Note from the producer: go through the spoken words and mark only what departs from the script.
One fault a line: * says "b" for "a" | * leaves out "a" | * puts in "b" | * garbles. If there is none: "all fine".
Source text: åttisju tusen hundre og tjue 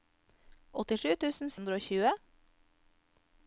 all fine